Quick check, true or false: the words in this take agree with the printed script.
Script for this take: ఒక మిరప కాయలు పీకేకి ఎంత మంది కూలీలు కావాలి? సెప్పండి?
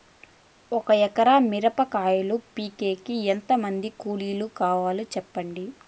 false